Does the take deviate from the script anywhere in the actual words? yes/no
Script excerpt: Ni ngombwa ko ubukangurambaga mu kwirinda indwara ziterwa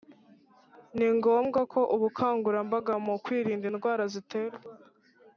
no